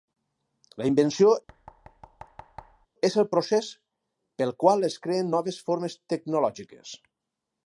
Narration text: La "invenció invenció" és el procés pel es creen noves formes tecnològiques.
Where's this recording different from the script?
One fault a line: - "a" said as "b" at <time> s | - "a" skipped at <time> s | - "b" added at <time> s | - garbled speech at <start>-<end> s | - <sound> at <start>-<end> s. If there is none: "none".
- "invenció" skipped at 1.3 s
- thud at 1.5-2.9 s
- "qual" added at 4.7 s